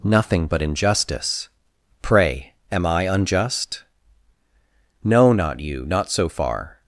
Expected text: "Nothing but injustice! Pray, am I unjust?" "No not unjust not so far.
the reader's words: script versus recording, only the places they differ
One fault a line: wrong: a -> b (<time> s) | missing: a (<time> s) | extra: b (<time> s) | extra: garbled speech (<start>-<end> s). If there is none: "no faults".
wrong: unjust -> you (5.6 s)